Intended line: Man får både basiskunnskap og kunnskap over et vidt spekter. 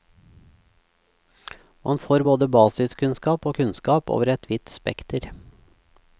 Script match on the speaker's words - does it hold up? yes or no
yes